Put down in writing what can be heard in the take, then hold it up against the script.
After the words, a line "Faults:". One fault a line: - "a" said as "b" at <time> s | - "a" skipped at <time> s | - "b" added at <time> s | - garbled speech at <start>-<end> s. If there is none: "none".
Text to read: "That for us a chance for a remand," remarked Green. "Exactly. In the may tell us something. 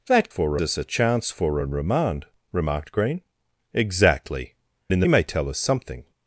"That for us a chance for a remand," remarked Green. "Exactly. In the may tell us something.
Faults:
none